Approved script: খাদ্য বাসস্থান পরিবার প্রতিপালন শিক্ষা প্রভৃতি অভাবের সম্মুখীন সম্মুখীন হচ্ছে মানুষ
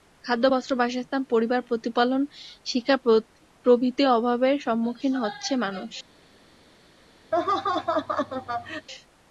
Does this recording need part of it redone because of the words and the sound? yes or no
yes